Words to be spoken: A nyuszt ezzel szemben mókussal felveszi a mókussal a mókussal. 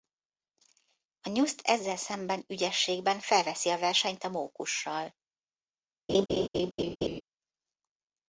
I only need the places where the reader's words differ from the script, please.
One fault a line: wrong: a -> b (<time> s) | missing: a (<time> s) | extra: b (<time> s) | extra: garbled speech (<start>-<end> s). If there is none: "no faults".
wrong: mókussal -> ügyességben (2.5 s)
wrong: mókussal -> versenyt (3.8 s)